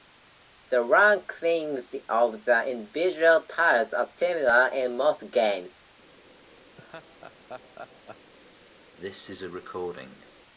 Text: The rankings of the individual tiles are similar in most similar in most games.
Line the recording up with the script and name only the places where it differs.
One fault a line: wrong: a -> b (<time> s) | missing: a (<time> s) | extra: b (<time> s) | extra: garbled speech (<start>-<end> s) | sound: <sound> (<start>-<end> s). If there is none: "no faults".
missing: similar in most (5.3 s)
sound: laugh (6.8-8.3 s)
sound: cough (9.0-10.3 s)